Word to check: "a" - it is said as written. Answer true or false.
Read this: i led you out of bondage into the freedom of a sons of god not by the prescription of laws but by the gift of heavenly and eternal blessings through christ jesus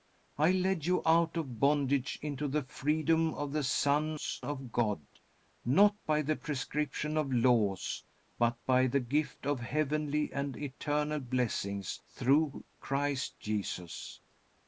false